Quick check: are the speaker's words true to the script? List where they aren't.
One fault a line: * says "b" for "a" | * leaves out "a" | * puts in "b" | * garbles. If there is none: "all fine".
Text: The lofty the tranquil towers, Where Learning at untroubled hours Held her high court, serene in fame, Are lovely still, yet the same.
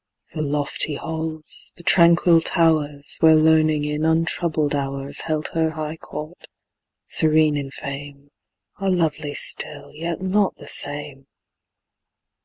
* puts in "halls"
* says "in" for "at"
* puts in "not"